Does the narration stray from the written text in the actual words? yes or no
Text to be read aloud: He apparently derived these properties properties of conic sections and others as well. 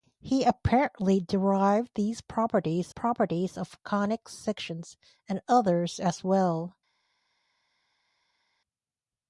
no